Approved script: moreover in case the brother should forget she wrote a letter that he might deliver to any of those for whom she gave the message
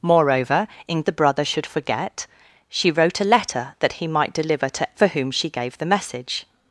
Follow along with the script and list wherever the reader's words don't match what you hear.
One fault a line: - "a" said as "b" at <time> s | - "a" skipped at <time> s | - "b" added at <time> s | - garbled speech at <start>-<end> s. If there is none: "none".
- "case" skipped at 1.0 s
- "any of those" skipped at 4.9 s